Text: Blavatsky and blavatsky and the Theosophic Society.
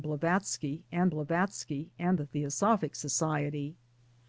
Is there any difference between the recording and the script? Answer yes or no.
no